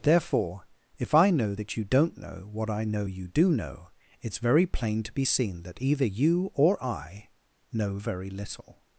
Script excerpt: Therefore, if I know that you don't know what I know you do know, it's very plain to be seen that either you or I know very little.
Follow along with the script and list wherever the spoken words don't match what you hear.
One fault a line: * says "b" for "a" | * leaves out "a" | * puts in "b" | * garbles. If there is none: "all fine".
all fine